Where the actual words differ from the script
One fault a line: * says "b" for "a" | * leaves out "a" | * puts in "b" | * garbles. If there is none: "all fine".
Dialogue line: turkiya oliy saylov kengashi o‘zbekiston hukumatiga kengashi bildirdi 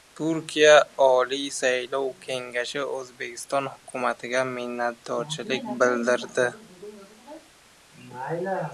* says "minnatdorchilik" for "kengashi"